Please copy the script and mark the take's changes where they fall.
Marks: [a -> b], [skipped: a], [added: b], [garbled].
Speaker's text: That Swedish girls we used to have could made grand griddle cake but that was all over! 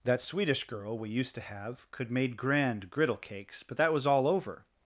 That Swedish [girls -> girl] we used to have could made grand griddle [cake -> cakes] but that was all over!